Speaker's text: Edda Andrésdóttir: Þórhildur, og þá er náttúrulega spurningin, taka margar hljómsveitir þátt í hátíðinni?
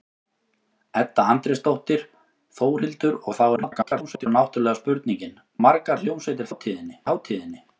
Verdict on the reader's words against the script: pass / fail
fail